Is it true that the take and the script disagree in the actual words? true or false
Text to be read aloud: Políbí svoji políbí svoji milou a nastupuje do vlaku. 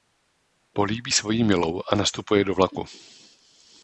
true